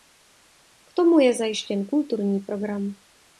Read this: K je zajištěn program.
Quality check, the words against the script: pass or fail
fail